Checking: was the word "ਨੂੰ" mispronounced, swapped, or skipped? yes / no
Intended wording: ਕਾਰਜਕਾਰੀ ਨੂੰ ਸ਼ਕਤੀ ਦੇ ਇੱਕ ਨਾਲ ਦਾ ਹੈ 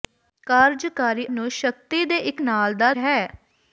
no